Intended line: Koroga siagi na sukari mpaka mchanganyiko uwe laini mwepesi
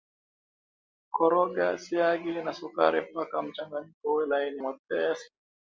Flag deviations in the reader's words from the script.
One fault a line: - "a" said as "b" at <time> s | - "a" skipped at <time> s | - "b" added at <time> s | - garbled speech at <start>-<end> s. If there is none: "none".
none